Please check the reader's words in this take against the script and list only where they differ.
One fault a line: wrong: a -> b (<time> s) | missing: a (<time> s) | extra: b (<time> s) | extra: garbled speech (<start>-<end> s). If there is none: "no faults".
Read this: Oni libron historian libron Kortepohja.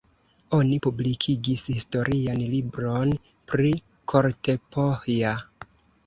wrong: libron -> publikigis (0.8 s)
extra: pri (3.5 s)